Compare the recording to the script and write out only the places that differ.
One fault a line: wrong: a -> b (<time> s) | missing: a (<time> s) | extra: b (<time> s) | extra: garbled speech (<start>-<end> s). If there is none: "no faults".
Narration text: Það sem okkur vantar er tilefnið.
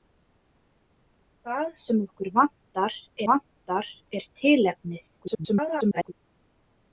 extra: vantar (3.3 s)
extra: garbled speech (5.2-6.1 s)